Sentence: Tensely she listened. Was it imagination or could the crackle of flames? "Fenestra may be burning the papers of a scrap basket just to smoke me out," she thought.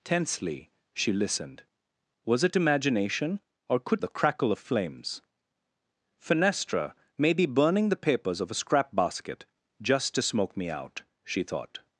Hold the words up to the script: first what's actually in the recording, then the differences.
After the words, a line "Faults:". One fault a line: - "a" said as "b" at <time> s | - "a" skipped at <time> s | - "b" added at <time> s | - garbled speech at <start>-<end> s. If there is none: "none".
Tensely she listened. Was it imagination or could the crackle of flames? "Fenestra may be burning the papers of a scrap basket just to smoke me out," she thought.
Faults:
none